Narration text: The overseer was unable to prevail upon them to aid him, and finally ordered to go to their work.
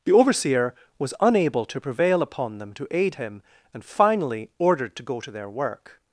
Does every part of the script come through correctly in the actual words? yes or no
yes